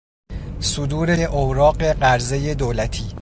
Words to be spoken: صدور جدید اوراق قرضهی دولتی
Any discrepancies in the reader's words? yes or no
yes